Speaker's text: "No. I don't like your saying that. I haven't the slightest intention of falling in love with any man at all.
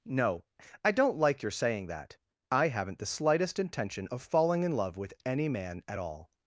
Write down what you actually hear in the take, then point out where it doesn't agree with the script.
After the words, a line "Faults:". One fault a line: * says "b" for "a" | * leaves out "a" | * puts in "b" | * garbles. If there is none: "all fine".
"No. I don't like your saying that. I haven't the slightest intention of falling in love with any man at all.
Faults:
all fine